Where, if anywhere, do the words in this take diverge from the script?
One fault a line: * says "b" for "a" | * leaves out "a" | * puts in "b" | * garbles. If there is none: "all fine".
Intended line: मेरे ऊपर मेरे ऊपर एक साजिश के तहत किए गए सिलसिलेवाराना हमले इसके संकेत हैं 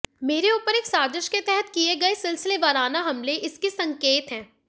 * leaves out "मेरे ऊपर"